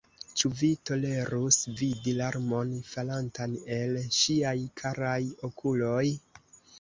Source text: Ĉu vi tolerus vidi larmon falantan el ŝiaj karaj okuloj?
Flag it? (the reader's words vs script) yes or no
no